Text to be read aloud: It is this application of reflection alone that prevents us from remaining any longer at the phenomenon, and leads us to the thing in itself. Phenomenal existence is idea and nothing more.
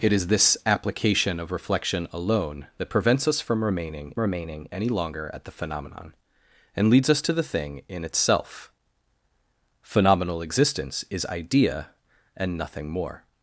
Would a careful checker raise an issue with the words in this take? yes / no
yes